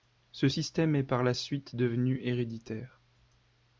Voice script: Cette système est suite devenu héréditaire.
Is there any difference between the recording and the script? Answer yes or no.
yes